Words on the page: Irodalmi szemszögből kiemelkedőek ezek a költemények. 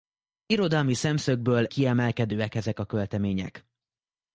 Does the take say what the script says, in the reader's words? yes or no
yes